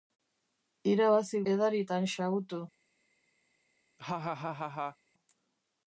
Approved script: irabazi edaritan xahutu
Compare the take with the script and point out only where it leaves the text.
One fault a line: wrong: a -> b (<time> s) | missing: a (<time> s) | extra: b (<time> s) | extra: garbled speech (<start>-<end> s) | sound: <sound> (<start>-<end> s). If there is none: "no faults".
sound: laugh (4.0-5.0 s)